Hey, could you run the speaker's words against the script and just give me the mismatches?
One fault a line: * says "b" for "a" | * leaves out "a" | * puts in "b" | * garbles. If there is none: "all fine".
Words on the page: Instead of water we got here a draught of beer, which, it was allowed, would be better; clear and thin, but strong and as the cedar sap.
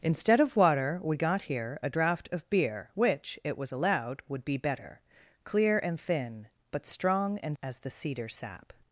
all fine